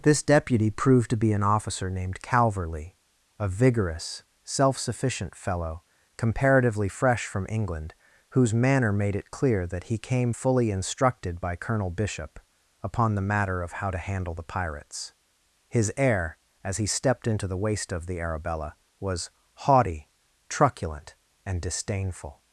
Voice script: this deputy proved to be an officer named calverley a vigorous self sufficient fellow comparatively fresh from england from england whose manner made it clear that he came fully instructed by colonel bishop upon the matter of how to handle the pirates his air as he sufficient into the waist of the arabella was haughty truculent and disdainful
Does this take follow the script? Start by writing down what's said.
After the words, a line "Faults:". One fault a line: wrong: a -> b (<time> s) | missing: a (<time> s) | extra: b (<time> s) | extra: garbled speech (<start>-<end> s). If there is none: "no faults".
this deputy proved to be an officer named calverley a vigorous self sufficient fellow comparatively fresh from england whose manner made it clear that he came fully instructed by colonel bishop upon the matter of how to handle the pirates his air as he stepped into the waist of the arabella was haughty truculent and disdainful
Faults:
missing: from england (7.9 s)
wrong: sufficient -> stepped (16.9 s)